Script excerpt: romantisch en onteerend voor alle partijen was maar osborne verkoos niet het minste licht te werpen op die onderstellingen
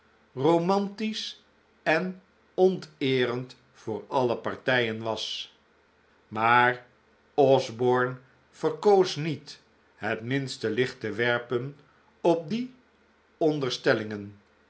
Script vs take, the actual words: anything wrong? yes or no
no